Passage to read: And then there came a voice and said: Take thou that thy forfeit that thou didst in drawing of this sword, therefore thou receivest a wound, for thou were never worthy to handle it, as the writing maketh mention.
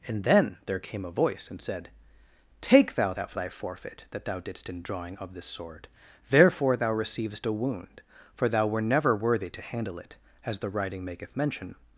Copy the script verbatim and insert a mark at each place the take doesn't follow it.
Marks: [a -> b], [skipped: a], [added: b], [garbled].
And then there came a voice and said: Take thou that thy forfeit that thou didst in drawing of this sword, therefore thou receivest a wound, for thou were never worthy to handle it, as the writing maketh mention.